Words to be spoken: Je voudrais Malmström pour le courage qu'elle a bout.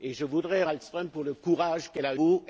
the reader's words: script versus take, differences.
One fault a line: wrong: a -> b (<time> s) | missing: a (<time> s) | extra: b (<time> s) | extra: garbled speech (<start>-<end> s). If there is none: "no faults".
no faults